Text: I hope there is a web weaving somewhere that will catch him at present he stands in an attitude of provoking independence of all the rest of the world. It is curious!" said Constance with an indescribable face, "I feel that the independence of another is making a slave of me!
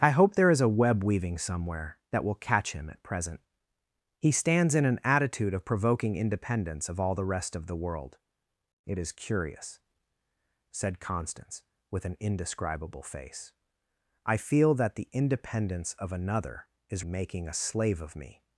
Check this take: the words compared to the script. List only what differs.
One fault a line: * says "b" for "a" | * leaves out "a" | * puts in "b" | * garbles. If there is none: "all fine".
all fine